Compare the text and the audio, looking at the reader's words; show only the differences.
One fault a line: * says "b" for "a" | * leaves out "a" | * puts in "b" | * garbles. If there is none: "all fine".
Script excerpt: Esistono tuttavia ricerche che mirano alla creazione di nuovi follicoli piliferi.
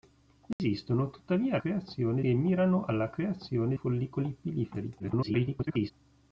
* says "creazione" for "ricerche"
* leaves out "di nuovi"
* garbles